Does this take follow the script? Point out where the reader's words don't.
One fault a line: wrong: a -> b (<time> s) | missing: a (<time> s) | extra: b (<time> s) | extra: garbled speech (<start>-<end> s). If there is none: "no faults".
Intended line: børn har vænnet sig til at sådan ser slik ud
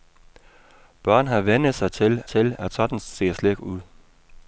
extra: til (2.3 s)